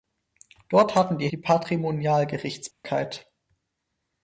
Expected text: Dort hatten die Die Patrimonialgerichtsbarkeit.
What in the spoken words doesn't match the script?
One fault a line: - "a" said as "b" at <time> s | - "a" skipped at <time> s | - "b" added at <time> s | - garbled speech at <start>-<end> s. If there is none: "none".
none